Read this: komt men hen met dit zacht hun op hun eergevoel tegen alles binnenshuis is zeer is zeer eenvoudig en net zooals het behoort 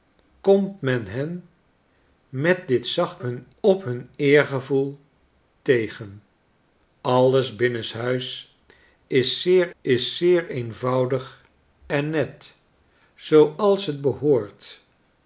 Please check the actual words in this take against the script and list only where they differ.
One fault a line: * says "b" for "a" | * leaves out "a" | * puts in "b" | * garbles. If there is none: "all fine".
all fine